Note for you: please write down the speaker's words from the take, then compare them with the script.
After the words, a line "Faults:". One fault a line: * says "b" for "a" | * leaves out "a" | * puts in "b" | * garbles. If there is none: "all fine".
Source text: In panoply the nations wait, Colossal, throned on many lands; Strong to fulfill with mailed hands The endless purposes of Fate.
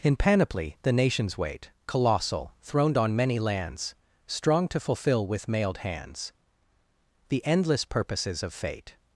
In panoply the nations wait, Colossal, throned on many lands; Strong to fulfill with mailed hands The endless purposes of Fate.
Faults:
all fine